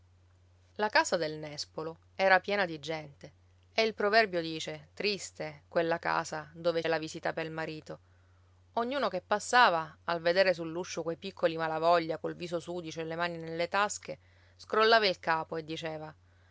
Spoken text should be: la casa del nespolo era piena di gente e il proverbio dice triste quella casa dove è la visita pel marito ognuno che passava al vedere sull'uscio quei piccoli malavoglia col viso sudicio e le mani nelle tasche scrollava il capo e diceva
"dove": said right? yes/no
yes